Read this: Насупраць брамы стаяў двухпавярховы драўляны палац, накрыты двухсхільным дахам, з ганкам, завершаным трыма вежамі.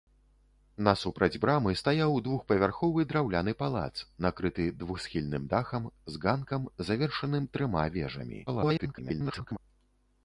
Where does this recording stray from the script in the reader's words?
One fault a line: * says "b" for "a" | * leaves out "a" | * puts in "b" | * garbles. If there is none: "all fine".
* garbles